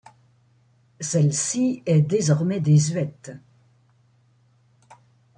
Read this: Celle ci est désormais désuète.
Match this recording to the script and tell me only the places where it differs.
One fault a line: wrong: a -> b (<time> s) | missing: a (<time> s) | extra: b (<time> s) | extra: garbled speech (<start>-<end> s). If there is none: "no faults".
no faults